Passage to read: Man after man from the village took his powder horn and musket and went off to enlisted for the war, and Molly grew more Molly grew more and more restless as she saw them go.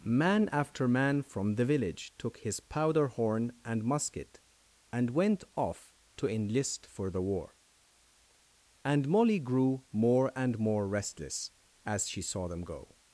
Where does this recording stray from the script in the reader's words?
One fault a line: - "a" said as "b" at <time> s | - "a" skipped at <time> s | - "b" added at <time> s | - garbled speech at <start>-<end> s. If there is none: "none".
- "enlisted" said as "enlist" at 6.3 s
- "Molly grew more" skipped at 10.3 s